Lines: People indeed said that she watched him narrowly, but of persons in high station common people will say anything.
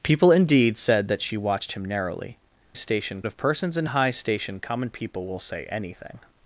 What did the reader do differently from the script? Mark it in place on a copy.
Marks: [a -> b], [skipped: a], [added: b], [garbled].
People indeed said that she watched him narrowly, [but -> station] of persons in high station common people will say anything.